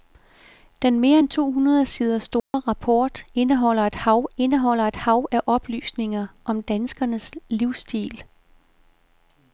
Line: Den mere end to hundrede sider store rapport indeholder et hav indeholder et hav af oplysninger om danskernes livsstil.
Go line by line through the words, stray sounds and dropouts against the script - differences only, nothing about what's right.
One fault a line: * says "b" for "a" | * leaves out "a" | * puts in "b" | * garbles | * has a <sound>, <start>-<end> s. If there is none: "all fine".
* has a dropout, 2.4-2.5 s